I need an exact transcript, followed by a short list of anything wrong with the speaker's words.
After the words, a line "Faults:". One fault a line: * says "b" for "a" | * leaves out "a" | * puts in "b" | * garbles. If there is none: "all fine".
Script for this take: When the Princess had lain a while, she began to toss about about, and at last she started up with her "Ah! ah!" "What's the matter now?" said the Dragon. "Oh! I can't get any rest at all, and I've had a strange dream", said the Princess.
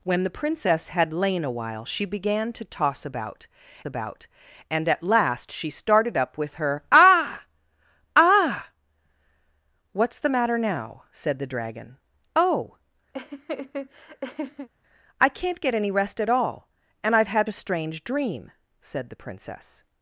When the Princess had lain a while, she began to toss about about, and at last she started up with her "Ah! ah!" "What's the matter now?" said the Dragon. "Oh! I can't get any rest at all, and I've had a strange dream", said the Princess.
Faults:
all fine